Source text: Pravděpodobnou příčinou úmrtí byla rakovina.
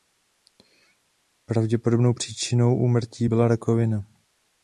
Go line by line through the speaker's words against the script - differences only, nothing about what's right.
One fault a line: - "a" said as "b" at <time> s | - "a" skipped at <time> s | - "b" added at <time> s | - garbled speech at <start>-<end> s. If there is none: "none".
none